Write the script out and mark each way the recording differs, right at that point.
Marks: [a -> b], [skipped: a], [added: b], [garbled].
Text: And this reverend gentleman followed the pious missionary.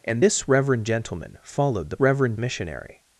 And this reverend gentleman followed the [pious -> reverend] missionary.